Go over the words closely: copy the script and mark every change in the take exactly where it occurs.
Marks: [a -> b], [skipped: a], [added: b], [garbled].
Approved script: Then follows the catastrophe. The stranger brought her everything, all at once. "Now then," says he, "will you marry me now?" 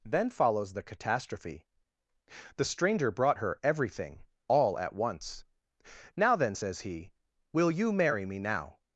Then follows the catastrophe. The stranger brought her everything, all at once. "Now then," says he, "will you marry me now?"